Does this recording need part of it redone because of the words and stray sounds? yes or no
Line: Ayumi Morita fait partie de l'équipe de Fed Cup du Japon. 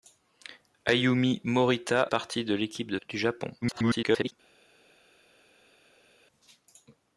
yes